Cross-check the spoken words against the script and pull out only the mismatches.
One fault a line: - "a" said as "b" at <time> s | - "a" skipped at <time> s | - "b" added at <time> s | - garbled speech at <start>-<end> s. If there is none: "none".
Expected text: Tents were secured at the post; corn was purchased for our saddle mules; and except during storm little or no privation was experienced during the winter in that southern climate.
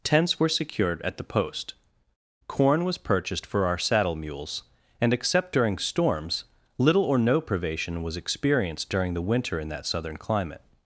- "storm" said as "storms" at 5.8 s